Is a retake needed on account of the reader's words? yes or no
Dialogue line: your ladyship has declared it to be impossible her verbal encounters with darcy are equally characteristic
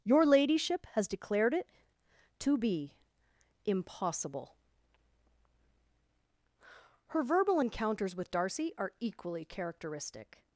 no